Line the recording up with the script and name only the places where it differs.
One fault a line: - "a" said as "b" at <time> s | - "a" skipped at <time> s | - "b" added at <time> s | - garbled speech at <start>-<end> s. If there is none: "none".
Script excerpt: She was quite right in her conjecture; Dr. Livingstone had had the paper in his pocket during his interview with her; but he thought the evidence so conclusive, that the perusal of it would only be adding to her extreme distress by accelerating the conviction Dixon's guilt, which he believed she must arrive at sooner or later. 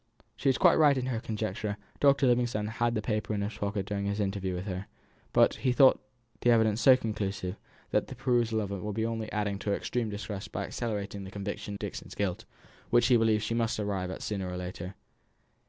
none